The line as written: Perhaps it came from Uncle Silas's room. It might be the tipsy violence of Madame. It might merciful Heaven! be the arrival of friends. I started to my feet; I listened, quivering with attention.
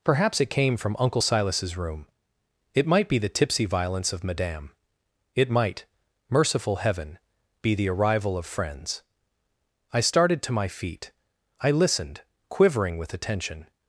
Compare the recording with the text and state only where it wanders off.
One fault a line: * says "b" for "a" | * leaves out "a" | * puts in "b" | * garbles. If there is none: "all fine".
all fine